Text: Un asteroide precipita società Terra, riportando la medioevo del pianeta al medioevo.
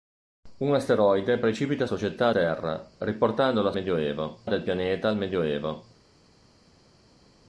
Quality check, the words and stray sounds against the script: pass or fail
pass